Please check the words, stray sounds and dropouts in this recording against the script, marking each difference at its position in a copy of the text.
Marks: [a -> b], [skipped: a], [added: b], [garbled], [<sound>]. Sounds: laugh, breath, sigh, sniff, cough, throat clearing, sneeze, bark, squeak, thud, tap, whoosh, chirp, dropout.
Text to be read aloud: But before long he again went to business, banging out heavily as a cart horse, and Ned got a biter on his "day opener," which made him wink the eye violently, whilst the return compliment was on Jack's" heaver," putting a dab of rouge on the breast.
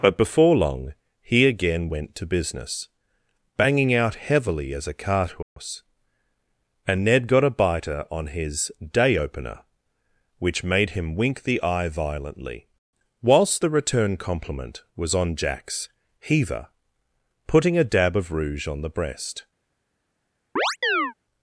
But before long he again went to business, banging out heavily as a cart horse, [dropout] and Ned got a biter on his "day opener," which made him wink the eye violently, whilst the return compliment was on Jack's" heaver," putting a dab of rouge on the breast. [chirp]